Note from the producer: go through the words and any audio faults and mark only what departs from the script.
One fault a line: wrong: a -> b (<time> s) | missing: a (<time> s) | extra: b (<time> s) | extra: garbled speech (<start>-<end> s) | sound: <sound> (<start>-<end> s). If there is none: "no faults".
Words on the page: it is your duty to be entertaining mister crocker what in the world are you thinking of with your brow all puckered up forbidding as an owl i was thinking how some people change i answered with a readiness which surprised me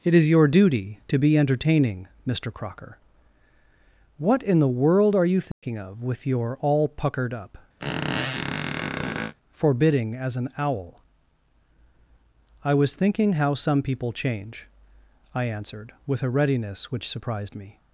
sound: dropout (5.5-5.6 s)
missing: brow (6.6 s)
sound: squeak (7.8-9.3 s)